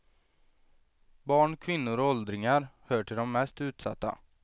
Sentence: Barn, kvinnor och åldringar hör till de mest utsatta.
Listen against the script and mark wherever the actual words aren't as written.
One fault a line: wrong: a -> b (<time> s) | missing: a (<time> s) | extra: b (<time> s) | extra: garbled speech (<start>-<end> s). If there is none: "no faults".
no faults